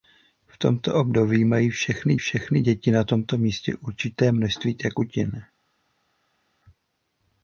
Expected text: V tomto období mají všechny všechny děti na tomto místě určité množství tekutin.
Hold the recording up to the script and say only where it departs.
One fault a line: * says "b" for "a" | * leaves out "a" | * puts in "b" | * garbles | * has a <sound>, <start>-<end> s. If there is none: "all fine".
all fine